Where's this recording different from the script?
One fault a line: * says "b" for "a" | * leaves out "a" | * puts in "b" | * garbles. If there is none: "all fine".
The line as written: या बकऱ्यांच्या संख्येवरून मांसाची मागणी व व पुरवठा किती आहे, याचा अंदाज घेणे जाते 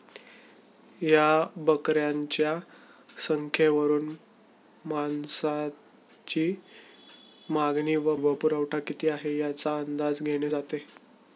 all fine